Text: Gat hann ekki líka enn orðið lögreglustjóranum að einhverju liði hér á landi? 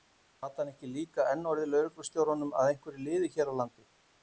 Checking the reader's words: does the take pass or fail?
pass